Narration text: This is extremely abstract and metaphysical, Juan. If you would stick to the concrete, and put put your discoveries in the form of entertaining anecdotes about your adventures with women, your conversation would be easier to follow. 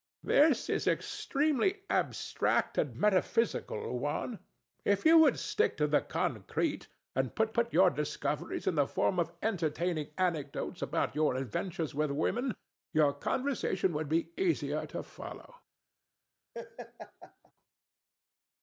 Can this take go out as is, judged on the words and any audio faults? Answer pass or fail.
fail